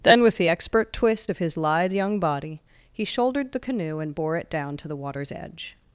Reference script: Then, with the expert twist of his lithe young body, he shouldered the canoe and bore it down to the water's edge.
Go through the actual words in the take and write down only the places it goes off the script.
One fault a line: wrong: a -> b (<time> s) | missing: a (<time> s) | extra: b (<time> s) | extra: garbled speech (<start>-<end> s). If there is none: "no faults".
no faults